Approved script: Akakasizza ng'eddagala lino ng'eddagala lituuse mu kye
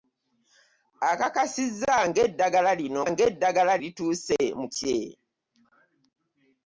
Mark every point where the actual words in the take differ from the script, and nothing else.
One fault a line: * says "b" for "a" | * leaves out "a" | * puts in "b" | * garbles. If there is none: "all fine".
all fine